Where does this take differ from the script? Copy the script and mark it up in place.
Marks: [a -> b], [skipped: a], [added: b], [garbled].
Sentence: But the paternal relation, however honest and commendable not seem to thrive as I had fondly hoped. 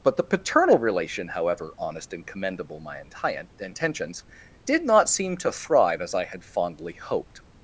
But the paternal relation, however honest and commendable [added: my intentions did] not seem to thrive as I had fondly hoped.